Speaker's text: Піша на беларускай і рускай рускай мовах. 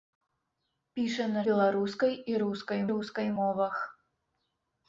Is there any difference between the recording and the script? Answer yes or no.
no